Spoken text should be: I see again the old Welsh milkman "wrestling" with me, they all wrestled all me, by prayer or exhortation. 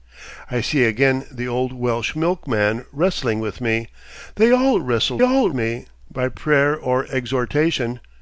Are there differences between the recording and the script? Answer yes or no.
no